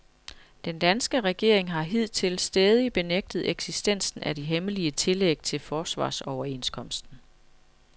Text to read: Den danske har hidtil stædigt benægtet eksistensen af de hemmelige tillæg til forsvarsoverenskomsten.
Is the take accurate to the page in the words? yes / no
no